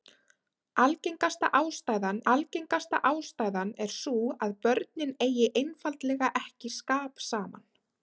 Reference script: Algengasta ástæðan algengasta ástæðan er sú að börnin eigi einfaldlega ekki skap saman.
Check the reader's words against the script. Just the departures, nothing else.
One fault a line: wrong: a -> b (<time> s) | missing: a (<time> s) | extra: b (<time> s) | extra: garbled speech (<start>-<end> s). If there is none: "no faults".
no faults